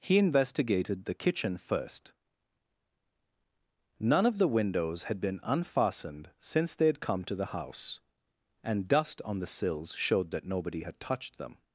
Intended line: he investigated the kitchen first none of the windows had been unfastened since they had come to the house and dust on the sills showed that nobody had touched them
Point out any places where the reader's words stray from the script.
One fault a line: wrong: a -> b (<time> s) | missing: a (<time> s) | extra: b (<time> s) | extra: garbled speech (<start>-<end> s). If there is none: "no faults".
no faults